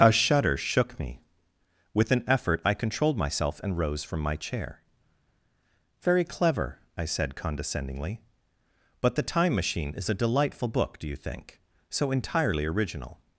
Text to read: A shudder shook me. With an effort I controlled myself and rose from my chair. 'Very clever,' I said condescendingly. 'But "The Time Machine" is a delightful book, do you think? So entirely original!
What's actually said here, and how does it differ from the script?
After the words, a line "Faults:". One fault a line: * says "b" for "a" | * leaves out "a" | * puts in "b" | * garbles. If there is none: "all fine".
A shudder shook me. With an effort I controlled myself and rose from my chair. 'Very clever,' I said condescendingly. 'But "The Time Machine" is a delightful book, do you think? So entirely original!
Faults:
all fine